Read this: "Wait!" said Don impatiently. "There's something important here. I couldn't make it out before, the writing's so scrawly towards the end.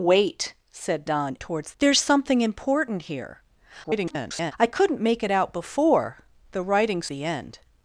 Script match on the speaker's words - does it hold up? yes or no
no